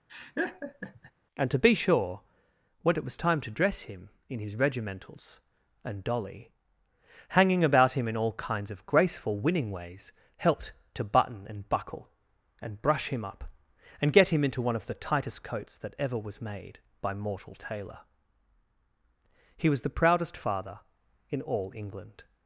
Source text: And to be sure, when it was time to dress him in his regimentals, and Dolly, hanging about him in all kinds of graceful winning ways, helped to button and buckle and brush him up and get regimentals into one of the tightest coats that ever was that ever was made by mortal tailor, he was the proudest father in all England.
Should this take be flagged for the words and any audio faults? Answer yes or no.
yes